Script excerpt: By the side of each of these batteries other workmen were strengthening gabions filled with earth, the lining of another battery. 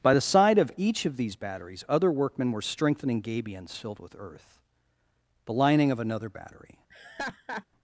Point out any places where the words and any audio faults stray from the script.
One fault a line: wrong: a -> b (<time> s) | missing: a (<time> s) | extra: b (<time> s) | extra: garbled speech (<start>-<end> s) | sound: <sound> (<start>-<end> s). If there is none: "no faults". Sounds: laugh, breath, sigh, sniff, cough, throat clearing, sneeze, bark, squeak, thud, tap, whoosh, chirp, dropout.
sound: laugh (6.9-7.7 s)